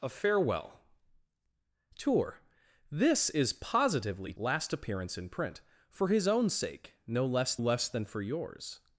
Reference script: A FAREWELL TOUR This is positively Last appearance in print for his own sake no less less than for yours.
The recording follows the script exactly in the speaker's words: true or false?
true